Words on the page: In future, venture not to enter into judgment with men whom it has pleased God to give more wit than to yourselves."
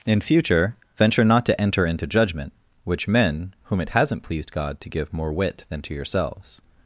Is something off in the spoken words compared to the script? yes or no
yes